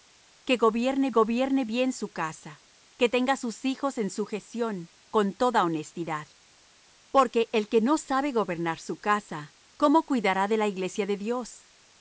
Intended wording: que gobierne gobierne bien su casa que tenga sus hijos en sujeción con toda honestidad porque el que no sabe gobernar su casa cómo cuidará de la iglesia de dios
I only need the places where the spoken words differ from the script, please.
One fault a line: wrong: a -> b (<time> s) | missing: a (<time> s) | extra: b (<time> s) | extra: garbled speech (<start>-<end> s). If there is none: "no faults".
no faults